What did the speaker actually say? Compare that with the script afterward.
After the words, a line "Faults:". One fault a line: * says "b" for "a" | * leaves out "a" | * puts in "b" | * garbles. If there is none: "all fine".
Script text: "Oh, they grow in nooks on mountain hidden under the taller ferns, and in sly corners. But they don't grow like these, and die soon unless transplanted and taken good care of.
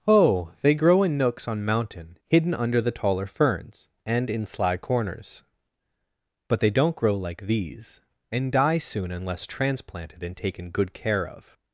"Oh, they grow in nooks on mountain hidden under the taller ferns, and in sly corners. But they don't grow like these, and die soon unless transplanted and taken good care of.
Faults:
all fine